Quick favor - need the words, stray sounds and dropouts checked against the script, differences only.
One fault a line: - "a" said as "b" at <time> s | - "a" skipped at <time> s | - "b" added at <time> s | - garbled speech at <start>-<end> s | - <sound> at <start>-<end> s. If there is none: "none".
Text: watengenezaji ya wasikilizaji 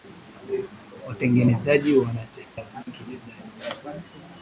- dropout at 2.8-2.9 s